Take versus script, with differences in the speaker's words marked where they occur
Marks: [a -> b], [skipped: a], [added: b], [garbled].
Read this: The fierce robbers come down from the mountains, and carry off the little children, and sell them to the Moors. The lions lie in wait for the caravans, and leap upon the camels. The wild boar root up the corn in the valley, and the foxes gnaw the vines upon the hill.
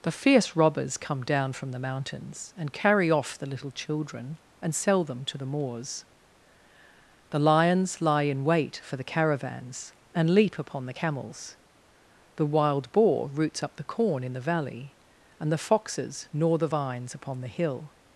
The fierce robbers come down from the mountains, and carry off the little children, and sell them to the Moors. The lions lie in wait for the caravans, and leap upon the camels. The wild boar [root -> roots] up the corn in the valley, and the foxes gnaw the vines upon the hill.